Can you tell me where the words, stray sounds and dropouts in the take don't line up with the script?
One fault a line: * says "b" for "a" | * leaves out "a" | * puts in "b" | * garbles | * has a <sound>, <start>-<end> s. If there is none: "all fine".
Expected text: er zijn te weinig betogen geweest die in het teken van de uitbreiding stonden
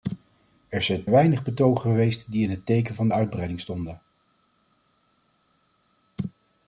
* leaves out "te"